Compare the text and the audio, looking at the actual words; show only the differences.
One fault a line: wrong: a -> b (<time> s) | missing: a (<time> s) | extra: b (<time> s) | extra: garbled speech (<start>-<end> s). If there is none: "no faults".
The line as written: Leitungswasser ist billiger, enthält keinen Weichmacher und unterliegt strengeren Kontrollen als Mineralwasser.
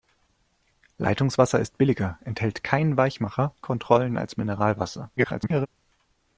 missing: und unterliegt strengeren (3.5 s)
extra: garbled speech (5.2-5.7 s)